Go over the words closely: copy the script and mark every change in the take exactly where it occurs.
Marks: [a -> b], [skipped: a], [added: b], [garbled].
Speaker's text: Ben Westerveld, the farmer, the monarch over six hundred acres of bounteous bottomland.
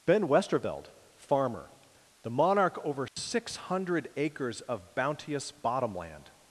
Ben Westerveld, [skipped: the] farmer, the monarch over six hundred acres of bounteous bottomland.